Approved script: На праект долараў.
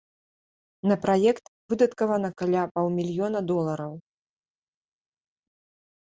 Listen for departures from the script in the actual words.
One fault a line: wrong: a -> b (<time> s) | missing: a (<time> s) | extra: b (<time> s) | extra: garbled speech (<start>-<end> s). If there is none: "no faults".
extra: выдаткавана каля паўмільёна (1.7 s)